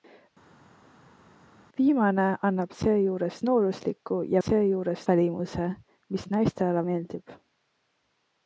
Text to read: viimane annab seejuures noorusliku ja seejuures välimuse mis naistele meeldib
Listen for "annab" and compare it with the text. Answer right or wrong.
right